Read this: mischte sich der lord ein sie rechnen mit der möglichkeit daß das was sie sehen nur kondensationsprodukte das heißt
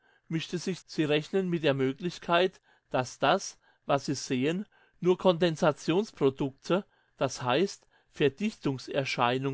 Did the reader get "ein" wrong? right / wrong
wrong